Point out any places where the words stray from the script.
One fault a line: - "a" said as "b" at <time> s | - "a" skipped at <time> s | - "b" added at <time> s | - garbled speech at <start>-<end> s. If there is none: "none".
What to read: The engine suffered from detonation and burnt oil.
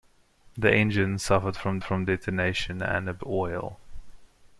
- "from" added at 1.8 s
- "burnt" skipped at 3.2 s